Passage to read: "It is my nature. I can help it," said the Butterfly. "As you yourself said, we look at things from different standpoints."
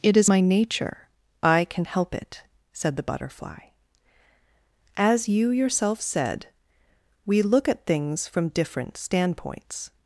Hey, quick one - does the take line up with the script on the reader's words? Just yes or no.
yes